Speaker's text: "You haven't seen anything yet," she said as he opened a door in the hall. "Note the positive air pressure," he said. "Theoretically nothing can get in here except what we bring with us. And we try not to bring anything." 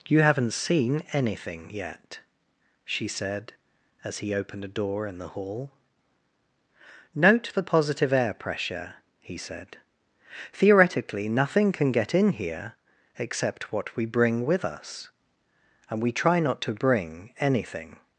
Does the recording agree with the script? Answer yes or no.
yes